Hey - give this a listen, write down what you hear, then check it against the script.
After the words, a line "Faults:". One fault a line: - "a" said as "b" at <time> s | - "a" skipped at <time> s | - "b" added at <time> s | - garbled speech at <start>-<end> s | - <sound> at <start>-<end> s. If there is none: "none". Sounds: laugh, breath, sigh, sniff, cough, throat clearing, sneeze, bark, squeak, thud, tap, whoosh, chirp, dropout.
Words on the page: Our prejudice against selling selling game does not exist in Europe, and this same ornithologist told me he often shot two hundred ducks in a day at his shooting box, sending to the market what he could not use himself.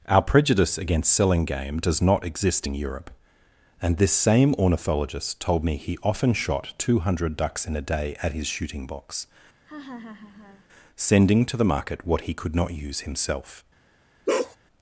Our prejudice against selling game does not exist in Europe, and this same ornithologist told me he often shot two hundred ducks in a day at his shooting box, sending to the market what he could not use himself.
Faults:
- "selling" skipped at 1.4 s
- laugh at 9.7-10.7 s
- bark at 14.3-14.6 s